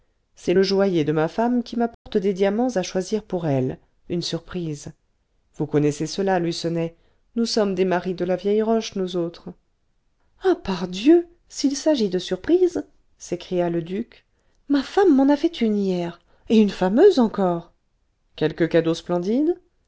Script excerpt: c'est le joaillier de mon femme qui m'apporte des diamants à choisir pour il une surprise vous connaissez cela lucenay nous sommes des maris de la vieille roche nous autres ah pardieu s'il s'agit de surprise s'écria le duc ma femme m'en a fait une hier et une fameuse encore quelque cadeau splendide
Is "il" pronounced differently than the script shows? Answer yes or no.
yes